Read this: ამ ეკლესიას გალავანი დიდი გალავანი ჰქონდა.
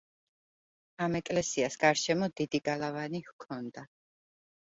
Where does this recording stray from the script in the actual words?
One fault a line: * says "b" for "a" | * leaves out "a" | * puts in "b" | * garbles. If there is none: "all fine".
* says "გარშემო" for "გალავანი"